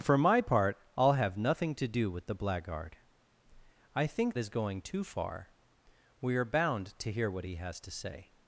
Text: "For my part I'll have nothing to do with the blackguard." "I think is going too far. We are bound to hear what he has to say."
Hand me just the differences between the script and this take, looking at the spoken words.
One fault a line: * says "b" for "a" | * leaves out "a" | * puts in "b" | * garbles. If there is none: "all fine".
all fine